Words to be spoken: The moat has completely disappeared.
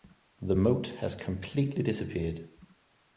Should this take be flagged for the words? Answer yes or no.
no